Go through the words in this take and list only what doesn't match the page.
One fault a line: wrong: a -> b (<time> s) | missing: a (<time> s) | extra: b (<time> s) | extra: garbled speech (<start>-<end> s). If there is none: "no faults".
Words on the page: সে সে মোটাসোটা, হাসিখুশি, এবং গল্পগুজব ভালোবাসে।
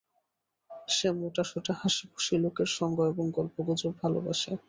missing: সে (1.1 s)
extra: লোকের সঙ্গ (2.4 s)